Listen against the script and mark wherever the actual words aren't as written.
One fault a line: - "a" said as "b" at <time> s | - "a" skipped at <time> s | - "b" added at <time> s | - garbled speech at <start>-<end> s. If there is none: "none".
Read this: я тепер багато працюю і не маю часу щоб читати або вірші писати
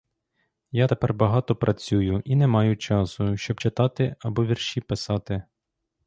none